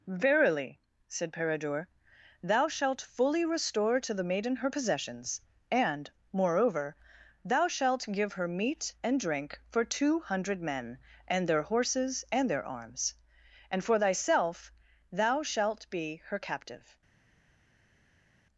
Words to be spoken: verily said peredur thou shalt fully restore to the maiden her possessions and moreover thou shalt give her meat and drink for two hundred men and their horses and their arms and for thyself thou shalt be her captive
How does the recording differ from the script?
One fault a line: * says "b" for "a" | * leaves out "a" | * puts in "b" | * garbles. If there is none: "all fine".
all fine